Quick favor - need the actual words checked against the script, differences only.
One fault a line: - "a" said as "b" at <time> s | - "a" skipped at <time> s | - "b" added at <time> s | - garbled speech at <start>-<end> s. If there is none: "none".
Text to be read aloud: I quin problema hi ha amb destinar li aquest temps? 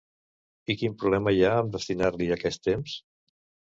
none